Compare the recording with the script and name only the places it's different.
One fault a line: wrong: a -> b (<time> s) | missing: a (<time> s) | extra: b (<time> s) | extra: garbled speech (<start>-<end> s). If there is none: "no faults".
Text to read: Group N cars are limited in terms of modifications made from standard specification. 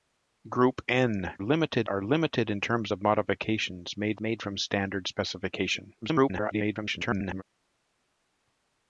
wrong: cars -> limited (1.4 s)
extra: made (4.2 s)
extra: garbled speech (6.0-7.4 s)